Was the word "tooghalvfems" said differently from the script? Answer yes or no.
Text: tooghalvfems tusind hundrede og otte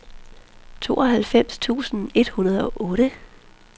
no